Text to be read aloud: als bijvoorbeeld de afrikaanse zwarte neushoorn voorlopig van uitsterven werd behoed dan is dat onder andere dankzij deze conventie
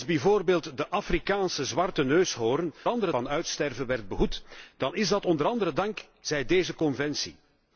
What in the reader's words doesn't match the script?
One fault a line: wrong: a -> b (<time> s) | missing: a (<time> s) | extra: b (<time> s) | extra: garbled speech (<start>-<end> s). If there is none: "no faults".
wrong: voorlopig -> andere (2.9 s)